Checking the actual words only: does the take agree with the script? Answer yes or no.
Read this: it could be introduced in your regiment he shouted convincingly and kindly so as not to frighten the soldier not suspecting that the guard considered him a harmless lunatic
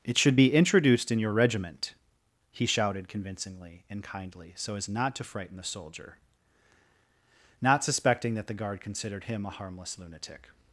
no